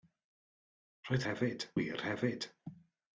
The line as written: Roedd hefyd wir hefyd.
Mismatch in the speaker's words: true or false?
false